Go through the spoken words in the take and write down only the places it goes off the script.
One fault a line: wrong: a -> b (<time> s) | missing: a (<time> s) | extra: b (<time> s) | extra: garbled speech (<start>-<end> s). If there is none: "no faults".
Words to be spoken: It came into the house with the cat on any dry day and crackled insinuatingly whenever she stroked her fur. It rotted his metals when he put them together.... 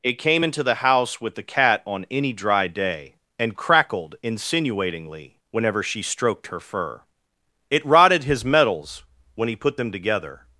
no faults